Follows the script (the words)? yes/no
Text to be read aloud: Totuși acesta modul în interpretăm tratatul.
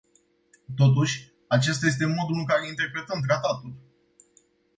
no